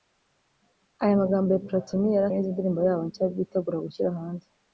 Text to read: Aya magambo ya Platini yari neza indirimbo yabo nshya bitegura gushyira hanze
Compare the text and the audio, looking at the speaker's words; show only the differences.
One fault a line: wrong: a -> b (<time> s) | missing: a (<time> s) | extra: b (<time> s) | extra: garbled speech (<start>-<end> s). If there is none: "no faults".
no faults